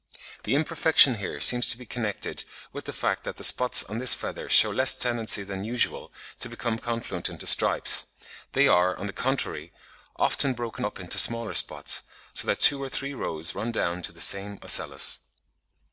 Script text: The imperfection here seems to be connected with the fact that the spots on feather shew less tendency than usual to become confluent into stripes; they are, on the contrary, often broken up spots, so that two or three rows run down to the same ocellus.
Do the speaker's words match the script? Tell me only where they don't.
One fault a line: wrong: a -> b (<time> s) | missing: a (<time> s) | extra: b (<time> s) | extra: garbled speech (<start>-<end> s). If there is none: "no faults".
extra: this (4.0 s)
extra: into smaller (11.0 s)